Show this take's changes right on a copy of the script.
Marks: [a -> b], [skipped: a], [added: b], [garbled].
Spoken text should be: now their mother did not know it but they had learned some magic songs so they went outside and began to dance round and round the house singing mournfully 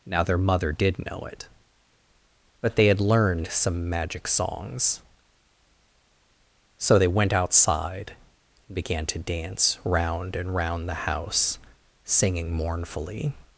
now their mother did [skipped: not] know it but they had learned some magic songs so they went outside and began to dance round and round the house singing mournfully